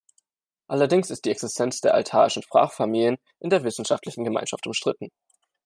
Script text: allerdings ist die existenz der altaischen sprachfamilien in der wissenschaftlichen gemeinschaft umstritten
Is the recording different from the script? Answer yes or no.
no